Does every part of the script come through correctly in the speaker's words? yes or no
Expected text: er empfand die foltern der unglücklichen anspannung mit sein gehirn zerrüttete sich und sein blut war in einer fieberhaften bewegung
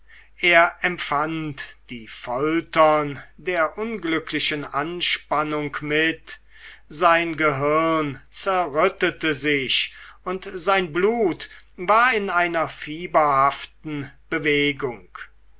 yes